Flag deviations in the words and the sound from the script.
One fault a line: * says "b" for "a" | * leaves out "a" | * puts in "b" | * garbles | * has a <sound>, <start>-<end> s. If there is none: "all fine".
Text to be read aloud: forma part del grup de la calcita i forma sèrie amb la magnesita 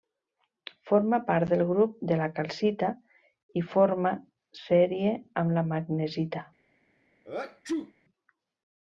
* has a sneeze, 7.2-7.9 s